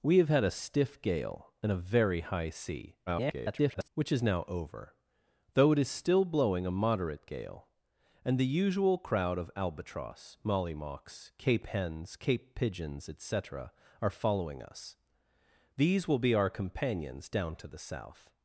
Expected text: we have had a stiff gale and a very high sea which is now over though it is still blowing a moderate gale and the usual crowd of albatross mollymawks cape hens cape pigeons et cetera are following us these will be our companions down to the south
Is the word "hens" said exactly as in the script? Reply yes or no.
yes